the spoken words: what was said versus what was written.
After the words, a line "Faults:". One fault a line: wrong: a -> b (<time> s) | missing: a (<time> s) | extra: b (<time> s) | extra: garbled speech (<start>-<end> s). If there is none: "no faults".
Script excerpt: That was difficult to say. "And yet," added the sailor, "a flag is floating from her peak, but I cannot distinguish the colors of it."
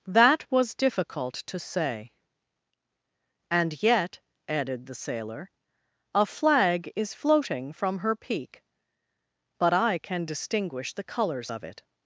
That was difficult to say. "And yet," added the sailor, "a flag is floating from her peak, but I can distinguish the colors of it."
Faults:
wrong: cannot -> can (10.0 s)